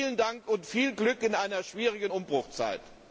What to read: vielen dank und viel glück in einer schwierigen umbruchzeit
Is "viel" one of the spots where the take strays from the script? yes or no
no